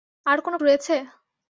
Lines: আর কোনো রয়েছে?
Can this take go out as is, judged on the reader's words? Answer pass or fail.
pass